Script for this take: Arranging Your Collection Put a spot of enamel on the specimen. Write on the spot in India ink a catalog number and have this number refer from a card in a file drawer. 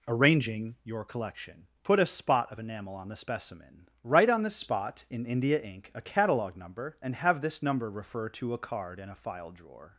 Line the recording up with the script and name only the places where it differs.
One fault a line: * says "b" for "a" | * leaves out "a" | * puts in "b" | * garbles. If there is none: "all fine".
* says "to" for "from"